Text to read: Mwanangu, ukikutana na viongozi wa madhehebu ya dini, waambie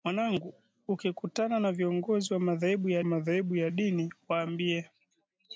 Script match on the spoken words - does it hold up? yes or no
no